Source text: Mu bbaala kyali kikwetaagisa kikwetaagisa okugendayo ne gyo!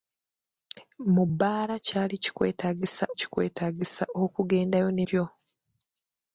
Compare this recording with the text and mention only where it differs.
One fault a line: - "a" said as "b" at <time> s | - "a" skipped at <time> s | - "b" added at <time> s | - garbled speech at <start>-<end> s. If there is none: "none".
none